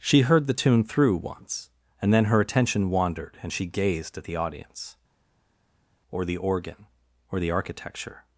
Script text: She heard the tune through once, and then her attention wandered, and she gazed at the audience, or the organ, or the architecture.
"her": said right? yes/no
yes